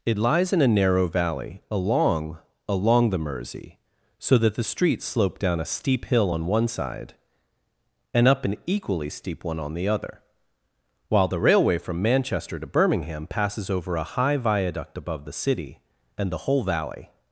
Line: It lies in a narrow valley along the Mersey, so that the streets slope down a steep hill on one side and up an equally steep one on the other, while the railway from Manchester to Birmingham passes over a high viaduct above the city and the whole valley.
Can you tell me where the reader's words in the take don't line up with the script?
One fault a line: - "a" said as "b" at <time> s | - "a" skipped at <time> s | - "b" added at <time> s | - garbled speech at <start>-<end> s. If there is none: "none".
- "along" added at 2.7 s